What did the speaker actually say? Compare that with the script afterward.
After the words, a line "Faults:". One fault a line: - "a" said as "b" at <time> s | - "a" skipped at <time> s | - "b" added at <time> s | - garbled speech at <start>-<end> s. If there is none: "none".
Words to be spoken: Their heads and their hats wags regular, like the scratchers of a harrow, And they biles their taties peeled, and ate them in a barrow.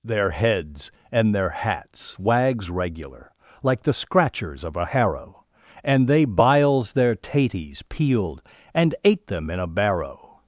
Their heads and their hats wags regular, like the scratchers of a harrow, And they biles their taties peeled, and ate them in a barrow.
Faults:
none